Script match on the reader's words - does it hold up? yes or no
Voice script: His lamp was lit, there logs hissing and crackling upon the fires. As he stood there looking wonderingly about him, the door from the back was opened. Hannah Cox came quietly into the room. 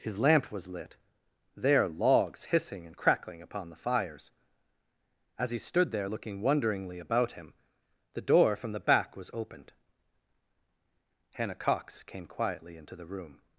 yes